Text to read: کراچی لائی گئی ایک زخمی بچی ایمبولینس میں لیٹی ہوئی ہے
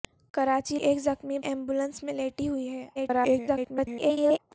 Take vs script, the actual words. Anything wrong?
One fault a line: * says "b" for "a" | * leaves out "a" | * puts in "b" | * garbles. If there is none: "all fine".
* leaves out "لائی گئی"
* leaves out "بچی"
* garbles